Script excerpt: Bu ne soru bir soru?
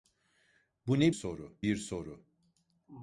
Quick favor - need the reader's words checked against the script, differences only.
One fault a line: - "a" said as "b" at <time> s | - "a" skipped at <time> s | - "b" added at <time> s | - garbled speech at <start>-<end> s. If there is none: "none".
none